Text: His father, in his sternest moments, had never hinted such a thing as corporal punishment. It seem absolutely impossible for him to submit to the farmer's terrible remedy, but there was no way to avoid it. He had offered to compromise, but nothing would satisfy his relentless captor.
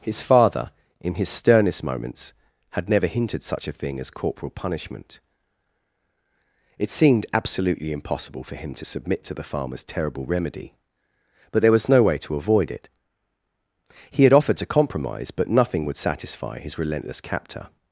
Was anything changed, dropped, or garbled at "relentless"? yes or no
no